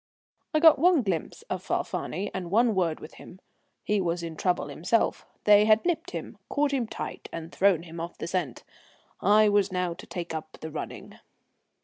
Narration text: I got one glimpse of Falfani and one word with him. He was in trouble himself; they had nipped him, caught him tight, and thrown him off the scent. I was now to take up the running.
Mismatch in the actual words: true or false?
false